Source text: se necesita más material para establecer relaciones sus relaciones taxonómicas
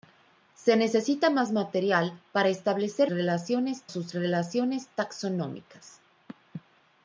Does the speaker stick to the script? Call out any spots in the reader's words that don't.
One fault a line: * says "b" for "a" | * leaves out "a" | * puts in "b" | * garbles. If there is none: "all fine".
all fine